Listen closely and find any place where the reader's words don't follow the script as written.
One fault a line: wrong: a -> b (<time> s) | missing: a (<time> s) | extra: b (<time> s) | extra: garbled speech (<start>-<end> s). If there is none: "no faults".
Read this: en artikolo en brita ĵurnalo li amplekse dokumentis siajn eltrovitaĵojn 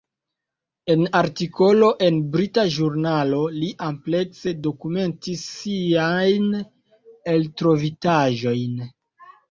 no faults